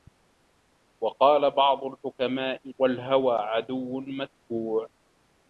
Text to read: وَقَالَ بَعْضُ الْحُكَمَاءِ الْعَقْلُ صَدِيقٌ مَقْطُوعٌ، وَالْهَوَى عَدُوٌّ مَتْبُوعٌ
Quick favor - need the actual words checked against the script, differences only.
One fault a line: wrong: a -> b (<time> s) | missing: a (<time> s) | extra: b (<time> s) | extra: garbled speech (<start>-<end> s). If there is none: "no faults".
missing: الْعَقْلُ صَدِيقٌ مَقْطُوعٌ (2.7 s)